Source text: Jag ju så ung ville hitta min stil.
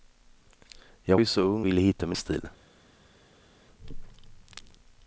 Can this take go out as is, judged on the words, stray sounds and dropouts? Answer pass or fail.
pass